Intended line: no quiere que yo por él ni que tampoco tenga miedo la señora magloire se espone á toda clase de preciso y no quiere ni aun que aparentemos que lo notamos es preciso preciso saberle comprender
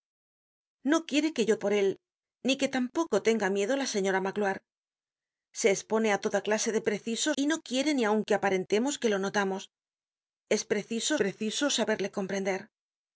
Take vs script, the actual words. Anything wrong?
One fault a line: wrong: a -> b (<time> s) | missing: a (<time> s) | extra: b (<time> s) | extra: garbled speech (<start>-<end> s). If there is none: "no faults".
no faults